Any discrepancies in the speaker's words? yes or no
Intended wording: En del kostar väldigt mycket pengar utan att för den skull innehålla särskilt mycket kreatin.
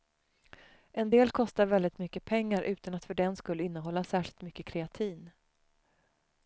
no